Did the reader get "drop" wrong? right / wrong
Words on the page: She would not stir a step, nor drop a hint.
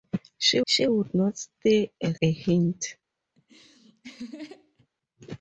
wrong